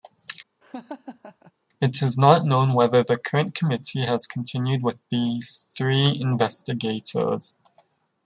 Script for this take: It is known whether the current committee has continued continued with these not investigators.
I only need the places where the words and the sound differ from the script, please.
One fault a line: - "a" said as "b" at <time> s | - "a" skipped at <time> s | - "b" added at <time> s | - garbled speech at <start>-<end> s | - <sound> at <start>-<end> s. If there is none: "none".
- laugh at 0.6-1.5 s
- "not" added at 2.2 s
- "continued" skipped at 4.8 s
- "not" said as "three" at 5.8 s